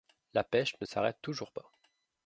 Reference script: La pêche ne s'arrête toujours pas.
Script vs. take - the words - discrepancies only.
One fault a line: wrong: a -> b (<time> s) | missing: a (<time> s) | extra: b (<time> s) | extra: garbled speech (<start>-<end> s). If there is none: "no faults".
no faults